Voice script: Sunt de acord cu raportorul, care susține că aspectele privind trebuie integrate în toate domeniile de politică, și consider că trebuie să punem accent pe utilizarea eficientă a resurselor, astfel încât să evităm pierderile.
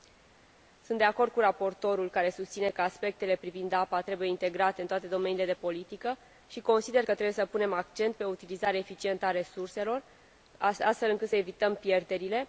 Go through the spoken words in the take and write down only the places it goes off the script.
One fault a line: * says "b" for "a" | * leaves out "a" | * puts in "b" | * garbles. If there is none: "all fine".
* puts in "apa"